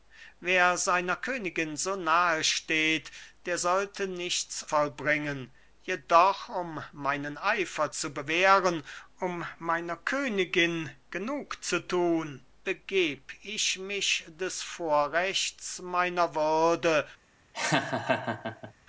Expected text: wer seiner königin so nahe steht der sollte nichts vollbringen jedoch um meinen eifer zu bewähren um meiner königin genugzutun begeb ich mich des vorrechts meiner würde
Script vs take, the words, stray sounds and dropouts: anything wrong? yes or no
yes